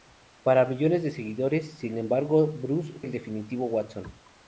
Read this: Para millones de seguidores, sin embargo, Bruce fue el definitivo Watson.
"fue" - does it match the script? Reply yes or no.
no